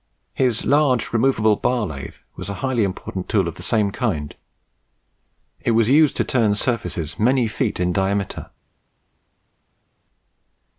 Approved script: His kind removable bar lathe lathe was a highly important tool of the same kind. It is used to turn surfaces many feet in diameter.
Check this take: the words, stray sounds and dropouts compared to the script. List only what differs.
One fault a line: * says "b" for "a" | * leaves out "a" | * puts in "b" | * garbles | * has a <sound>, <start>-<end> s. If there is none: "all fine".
* says "large" for "kind"
* leaves out "lathe"
* says "was" for "is"